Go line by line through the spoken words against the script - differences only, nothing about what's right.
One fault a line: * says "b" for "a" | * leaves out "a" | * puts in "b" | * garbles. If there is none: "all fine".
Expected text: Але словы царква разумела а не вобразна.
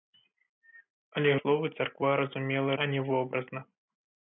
all fine